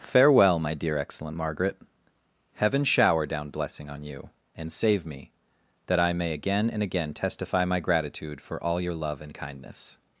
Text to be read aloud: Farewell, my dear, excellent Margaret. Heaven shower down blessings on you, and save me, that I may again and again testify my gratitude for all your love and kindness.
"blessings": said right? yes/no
no